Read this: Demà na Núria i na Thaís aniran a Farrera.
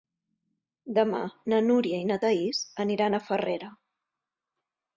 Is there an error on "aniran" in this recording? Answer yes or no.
no